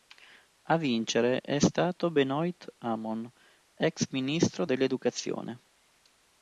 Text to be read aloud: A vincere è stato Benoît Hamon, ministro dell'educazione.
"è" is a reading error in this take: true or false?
false